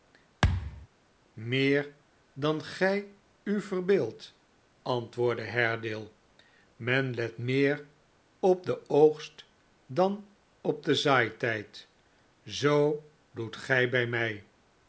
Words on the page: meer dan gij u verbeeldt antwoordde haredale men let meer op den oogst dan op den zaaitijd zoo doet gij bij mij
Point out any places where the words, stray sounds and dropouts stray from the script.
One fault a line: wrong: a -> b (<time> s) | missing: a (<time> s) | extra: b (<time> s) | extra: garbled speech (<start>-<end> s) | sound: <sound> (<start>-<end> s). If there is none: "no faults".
sound: thud (0.4-0.9 s)